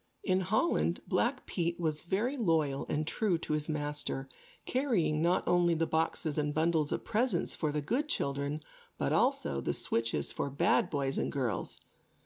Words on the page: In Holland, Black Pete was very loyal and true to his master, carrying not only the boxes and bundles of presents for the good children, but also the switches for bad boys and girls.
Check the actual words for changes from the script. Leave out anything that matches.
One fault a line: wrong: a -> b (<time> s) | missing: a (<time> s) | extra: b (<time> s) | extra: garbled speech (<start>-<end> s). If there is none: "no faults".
no faults